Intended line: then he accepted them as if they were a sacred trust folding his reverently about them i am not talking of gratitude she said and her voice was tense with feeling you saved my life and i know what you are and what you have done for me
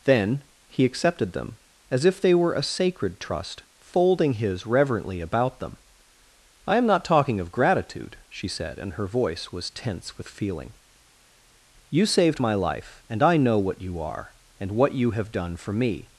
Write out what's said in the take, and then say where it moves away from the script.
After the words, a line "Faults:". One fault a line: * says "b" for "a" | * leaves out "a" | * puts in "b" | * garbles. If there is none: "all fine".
then he accepted them as if they were a sacred trust folding his reverently about them i am not talking of gratitude she said and her voice was tense with feeling you saved my life and i know what you are and what you have done for me
Faults:
all fine